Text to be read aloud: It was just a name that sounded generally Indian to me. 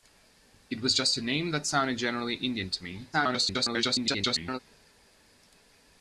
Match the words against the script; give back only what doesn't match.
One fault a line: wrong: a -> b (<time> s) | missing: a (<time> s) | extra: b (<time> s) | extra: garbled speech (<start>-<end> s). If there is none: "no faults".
extra: garbled speech (3.1-4.6 s)